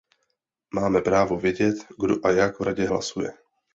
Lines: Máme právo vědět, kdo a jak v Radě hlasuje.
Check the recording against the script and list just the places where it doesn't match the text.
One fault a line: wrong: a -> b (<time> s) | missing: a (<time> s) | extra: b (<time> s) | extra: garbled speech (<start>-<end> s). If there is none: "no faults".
no faults